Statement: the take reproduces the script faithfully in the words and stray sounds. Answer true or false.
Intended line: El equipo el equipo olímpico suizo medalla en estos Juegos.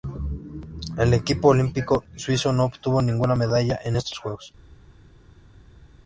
false